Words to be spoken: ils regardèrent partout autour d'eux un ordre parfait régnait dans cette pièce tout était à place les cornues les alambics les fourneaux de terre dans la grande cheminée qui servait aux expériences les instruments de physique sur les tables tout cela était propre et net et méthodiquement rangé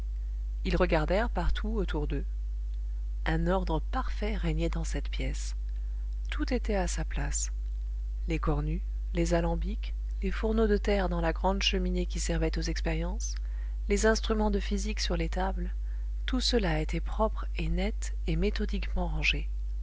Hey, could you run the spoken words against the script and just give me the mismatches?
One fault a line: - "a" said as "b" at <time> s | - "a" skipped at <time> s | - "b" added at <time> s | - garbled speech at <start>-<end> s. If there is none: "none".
- "sa" added at 6.9 s